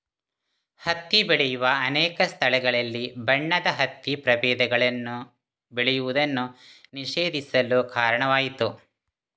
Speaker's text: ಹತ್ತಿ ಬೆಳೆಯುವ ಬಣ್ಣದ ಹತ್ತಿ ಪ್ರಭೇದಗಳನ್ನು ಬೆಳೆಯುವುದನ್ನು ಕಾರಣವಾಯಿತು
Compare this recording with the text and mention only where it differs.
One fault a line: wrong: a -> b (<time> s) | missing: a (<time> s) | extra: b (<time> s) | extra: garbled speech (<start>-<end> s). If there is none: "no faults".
extra: ಅನೇಕ ಸ್ಥಳಗಳಲ್ಲಿ (1.8 s)
extra: ನಿಷೇಧಿಸಲು (6.9 s)